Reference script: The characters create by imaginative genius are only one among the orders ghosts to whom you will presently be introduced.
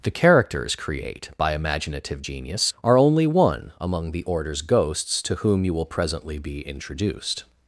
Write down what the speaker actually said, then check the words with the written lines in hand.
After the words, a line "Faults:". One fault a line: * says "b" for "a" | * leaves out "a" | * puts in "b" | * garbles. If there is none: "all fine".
The characters create by imaginative genius are only one among the orders ghosts to whom you will presently be introduced.
Faults:
all fine